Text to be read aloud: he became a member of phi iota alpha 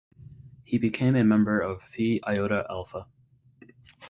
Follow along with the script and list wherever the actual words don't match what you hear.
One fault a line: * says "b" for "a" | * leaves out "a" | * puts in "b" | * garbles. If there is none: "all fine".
all fine